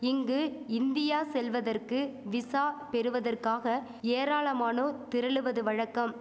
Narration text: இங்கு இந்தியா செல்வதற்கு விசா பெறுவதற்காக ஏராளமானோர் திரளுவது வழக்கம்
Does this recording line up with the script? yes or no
yes